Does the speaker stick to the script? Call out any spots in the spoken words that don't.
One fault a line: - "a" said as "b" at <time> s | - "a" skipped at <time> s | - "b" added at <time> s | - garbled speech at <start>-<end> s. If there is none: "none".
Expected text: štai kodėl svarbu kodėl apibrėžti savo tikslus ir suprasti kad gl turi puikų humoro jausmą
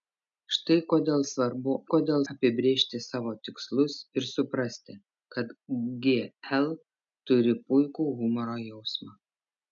none